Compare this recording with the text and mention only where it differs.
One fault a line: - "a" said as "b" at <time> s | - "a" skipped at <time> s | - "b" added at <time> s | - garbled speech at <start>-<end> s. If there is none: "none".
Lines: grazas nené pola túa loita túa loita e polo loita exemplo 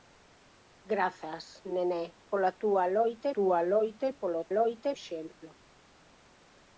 none